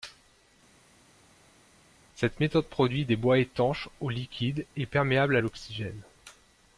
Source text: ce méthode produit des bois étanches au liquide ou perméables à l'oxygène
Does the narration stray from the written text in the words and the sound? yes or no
yes